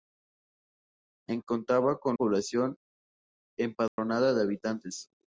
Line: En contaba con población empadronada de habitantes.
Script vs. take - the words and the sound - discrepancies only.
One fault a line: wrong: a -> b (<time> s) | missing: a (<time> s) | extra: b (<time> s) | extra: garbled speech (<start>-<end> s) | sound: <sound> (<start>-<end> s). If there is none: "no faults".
sound: dropout (3.9-4.0 s)